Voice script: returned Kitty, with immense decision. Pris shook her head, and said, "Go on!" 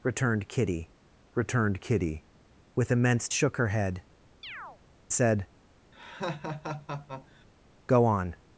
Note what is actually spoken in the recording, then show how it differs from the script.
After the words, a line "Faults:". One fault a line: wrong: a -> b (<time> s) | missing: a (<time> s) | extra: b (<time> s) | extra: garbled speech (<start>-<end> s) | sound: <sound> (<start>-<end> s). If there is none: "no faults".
returned Kitty returned Kitty, with immense shook her head, said, "Go on!"
Faults:
extra: returned Kitty (1.3 s)
missing: decision Pris (3.3 s)
missing: and (4.0 s)
sound: chirp (4.4-4.8 s)
sound: laugh (5.9-7.5 s)